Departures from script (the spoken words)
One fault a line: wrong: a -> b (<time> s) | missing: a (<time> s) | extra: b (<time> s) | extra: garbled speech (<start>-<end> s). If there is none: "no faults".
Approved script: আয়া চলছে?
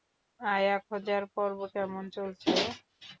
extra: খোঁজার পর্ব কেমন (0.9 s)